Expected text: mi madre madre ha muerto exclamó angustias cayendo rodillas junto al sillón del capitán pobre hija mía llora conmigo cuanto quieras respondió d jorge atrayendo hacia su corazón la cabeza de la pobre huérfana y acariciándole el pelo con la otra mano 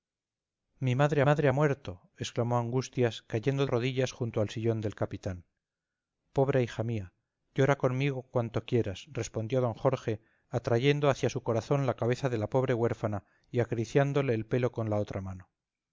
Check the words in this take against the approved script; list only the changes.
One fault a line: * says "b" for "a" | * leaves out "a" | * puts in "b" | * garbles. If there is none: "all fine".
all fine